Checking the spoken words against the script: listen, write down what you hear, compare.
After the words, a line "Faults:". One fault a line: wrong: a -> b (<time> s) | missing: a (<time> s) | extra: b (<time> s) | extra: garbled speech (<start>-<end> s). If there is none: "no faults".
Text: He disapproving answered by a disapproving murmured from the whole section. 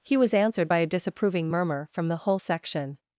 He was answered by a disapproving murmur from the whole section.
Faults:
wrong: disapproving -> was (0.2 s)
wrong: murmured -> murmur (1.5 s)